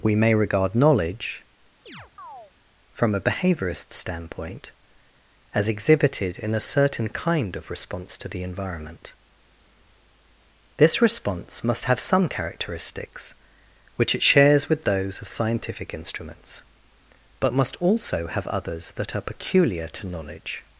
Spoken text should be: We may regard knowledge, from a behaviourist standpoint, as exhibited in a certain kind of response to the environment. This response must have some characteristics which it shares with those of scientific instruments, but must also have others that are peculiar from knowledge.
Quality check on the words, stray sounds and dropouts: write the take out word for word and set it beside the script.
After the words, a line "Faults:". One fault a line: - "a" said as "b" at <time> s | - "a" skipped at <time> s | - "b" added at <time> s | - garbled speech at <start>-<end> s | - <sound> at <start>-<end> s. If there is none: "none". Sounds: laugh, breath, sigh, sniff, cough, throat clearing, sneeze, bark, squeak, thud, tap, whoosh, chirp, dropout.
We may regard knowledge, from a behaviourist standpoint, as exhibited in a certain kind of response to the environment. This response must have some characteristics which it shares with those of scientific instruments, but must also have others that are peculiar to knowledge.
Faults:
- chirp at 1.9-2.5 s
- "from" said as "to" at 19.9 s